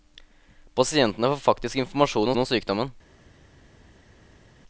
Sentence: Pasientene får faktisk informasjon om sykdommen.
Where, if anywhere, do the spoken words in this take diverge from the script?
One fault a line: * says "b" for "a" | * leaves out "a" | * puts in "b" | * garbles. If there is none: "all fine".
* puts in "om"